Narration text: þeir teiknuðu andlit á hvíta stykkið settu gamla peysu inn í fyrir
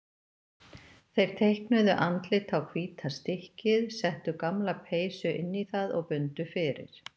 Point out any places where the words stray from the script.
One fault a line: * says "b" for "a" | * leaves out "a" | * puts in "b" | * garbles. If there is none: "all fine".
* puts in "það og bundu"